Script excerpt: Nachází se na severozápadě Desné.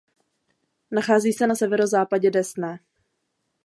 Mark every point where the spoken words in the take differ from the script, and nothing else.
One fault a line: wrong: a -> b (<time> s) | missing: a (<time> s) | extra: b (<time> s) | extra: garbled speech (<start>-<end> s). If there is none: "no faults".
no faults